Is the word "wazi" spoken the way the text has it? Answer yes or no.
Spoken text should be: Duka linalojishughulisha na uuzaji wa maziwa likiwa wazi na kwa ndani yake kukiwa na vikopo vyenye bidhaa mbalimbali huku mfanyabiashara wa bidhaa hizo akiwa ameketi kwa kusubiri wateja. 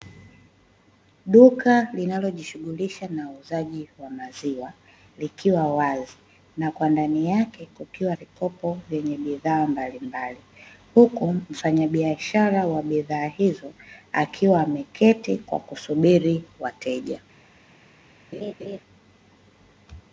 yes